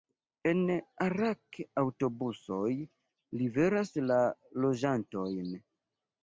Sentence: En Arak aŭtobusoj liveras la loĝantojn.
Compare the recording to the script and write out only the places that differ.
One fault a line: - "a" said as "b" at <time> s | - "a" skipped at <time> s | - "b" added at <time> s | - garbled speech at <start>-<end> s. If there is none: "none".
none